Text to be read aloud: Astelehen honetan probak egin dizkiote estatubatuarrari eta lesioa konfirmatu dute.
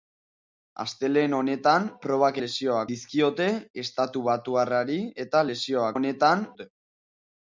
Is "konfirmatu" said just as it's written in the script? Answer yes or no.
no